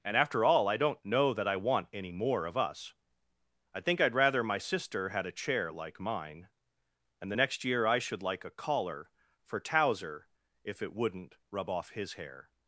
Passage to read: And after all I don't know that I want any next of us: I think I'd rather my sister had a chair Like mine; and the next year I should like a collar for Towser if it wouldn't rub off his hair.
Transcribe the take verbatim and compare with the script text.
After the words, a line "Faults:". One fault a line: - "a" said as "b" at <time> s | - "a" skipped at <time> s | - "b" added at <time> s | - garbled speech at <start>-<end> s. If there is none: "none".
And after all I don't know that I want any more of us: I think I'd rather my sister had a chair Like mine; and the next year I should like a collar for Towser if it wouldn't rub off his hair.
Faults:
- "next" said as "more" at 2.1 s